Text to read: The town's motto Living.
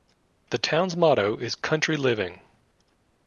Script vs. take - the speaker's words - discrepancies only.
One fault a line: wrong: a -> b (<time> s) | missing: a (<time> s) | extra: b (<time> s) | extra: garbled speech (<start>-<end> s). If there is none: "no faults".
extra: is Country (1.4 s)